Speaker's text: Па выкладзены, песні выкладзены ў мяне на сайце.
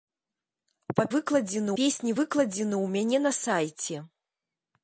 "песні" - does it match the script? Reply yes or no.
yes